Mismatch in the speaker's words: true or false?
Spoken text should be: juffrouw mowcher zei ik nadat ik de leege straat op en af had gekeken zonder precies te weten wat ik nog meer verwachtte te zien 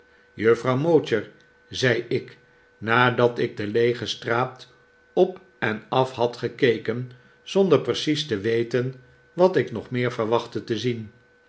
false